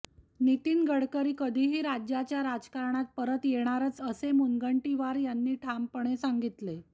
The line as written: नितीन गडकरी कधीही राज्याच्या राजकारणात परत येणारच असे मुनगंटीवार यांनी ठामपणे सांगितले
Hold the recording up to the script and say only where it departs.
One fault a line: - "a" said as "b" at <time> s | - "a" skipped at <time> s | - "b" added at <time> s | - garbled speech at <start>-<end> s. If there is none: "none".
none